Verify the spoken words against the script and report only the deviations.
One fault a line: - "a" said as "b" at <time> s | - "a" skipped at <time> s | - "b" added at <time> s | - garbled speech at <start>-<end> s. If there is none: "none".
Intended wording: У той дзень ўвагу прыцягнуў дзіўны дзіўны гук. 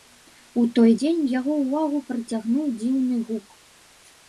- "яго" added at 1.4 s
- "дзіўны" skipped at 3.2 s